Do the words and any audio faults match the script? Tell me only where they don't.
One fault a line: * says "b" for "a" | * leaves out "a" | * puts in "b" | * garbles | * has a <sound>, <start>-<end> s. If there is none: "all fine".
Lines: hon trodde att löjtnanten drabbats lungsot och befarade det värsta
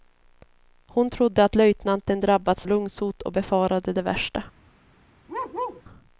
* has a bark, 5.3-5.8 s